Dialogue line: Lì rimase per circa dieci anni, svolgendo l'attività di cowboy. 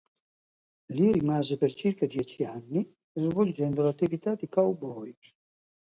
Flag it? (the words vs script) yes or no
no